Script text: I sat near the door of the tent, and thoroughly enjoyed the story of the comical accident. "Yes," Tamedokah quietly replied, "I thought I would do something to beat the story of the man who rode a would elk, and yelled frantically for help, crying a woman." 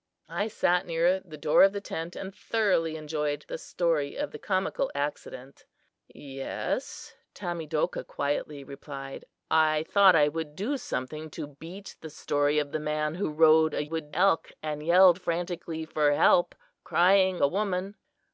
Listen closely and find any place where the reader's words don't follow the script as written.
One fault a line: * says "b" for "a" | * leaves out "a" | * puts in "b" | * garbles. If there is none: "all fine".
all fine